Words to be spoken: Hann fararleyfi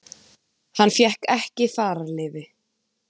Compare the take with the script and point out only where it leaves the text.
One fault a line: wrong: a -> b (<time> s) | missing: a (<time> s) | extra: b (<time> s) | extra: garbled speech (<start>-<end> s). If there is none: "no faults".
extra: fékk ekki (0.9 s)